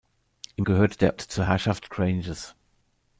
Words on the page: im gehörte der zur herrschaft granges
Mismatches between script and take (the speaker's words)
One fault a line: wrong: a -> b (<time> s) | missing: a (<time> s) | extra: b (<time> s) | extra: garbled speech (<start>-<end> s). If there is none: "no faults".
no faults